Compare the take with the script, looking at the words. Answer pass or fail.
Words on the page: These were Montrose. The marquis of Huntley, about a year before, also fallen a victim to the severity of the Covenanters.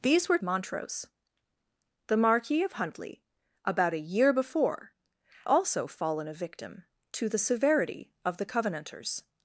pass